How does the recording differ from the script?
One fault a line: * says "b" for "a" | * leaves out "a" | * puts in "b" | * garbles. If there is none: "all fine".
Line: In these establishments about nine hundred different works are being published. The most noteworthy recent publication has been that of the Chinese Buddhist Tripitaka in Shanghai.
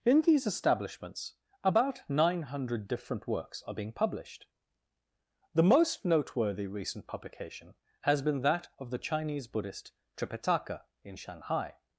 all fine